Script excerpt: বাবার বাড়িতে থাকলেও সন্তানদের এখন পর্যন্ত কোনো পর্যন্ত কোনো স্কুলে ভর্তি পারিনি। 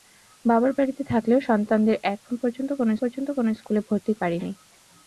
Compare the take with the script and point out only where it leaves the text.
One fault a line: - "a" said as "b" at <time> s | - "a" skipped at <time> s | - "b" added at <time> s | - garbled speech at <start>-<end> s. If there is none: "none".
none